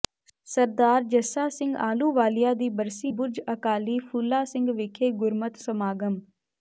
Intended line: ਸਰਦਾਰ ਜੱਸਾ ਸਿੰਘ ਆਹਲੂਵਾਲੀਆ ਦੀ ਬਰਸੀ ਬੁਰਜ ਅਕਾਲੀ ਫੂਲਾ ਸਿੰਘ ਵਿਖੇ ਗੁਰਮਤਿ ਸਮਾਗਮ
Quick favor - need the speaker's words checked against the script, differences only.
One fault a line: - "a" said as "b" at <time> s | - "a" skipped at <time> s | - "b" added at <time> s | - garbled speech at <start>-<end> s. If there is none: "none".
none